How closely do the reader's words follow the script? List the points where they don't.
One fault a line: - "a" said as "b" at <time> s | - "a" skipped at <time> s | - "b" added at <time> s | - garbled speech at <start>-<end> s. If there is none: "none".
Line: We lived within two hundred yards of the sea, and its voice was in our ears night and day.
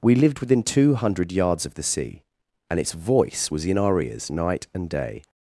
none